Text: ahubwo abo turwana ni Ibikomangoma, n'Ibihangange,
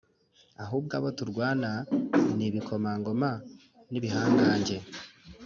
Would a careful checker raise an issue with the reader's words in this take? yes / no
no